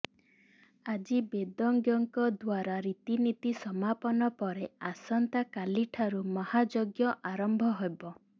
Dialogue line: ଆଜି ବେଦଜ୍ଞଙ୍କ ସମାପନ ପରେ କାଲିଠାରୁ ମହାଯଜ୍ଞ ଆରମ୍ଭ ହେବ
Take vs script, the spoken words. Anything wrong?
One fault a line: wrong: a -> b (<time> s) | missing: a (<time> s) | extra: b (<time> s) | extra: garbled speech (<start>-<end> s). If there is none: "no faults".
extra: ଦ୍ୱାରା ରୀତିନୀତି (2.4 s)
extra: ଆସନ୍ତା (4.9 s)